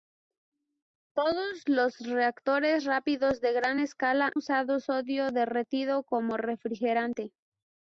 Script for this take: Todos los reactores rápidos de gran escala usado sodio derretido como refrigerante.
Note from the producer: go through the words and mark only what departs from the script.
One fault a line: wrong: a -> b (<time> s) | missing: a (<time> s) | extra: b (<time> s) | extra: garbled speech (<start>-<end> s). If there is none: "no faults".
no faults